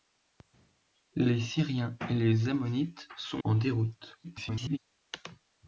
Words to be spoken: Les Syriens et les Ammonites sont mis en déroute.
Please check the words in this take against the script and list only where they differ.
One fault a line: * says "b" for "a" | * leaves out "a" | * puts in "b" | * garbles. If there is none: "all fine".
* leaves out "mis"
* garbles